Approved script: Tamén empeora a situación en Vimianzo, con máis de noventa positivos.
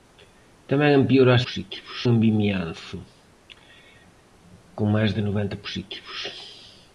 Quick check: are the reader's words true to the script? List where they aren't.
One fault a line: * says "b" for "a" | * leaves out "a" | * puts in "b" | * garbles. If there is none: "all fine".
* says "positivos" for "situación"